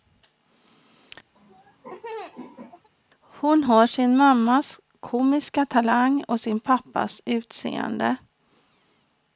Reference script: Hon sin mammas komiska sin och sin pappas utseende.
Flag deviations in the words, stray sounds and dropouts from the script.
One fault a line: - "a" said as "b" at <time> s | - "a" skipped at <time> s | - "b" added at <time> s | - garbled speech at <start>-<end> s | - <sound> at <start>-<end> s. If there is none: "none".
- laugh at 1.4-2.9 s
- "har" added at 3.6 s
- "sin" said as "talang" at 5.6 s